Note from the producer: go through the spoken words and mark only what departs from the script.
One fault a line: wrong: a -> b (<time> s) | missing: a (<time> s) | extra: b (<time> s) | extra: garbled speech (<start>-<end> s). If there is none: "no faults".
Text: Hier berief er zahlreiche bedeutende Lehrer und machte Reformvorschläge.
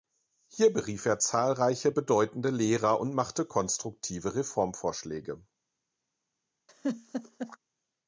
extra: konstruktive (3.4 s)